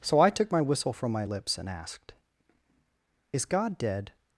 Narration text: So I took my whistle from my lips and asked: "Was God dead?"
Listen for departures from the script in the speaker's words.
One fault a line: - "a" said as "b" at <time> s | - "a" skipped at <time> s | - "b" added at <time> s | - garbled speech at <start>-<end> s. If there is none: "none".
- "Was" said as "Is" at 3.3 s